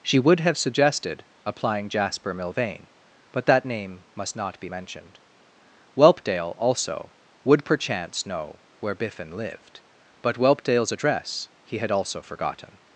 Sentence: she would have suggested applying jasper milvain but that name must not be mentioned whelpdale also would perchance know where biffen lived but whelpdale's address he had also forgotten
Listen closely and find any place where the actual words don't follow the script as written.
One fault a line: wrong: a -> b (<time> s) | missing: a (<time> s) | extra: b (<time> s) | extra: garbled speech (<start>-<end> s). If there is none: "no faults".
no faults